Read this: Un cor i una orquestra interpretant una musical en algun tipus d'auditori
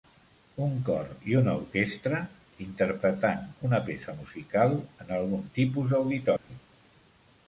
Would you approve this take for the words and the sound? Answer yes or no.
no